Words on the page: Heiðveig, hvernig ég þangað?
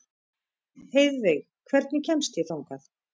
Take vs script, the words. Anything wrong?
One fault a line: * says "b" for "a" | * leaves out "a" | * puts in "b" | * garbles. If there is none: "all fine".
* puts in "kemst"